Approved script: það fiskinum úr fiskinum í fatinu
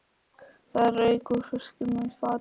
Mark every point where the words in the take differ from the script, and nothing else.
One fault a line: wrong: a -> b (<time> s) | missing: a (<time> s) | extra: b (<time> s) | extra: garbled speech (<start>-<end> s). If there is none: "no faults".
wrong: fiskinum -> rauk (0.9 s)